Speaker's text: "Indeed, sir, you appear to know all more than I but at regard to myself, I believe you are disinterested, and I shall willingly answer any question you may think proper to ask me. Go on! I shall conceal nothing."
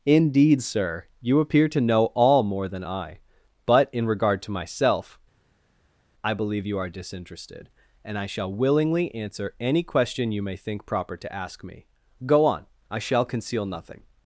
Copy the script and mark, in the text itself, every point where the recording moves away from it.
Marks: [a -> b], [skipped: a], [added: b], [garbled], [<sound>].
"Indeed, sir, you appear to know all more than I but [at -> in] regard to myself, I believe you are disinterested, and I shall willingly answer any question you may think proper to ask me. Go on! I shall conceal nothing."